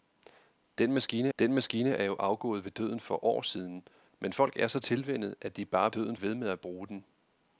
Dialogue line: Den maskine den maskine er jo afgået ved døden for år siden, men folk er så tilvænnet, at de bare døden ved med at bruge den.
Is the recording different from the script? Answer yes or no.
no